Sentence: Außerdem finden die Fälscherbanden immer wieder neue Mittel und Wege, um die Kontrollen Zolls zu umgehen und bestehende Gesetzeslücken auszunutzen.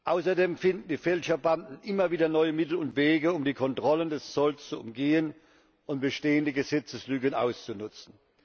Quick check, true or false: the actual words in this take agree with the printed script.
false